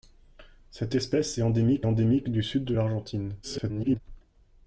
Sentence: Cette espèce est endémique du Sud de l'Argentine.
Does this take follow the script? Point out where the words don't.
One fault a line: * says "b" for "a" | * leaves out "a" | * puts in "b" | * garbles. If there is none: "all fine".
* puts in "endémique"
* garbles